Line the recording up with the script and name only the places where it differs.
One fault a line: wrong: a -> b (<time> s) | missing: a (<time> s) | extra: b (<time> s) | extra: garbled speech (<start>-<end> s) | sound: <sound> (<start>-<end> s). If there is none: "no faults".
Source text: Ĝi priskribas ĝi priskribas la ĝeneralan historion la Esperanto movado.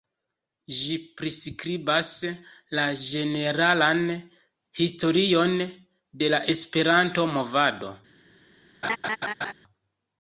missing: ĝi priskribas (2.1 s)
extra: de (6.2 s)
sound: laugh (8.8-9.5 s)